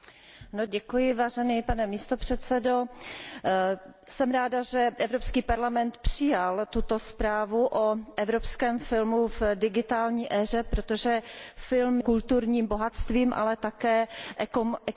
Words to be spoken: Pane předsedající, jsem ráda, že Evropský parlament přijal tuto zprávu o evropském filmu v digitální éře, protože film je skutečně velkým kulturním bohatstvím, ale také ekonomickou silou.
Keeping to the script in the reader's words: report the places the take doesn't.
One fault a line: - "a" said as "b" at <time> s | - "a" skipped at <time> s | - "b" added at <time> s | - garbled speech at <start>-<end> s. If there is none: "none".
- "je skutečně velkým" skipped at 12.0 s